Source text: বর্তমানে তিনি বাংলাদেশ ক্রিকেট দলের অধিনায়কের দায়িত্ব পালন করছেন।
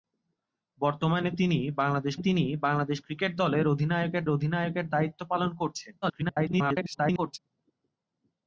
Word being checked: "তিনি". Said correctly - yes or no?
yes